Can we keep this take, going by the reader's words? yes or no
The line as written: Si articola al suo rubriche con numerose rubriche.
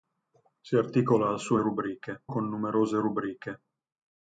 yes